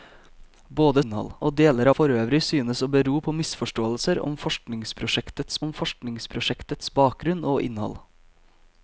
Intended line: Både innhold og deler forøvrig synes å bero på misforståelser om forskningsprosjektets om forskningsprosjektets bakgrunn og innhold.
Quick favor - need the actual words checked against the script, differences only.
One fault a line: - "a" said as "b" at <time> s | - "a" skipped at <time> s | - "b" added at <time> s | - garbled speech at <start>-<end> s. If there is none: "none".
none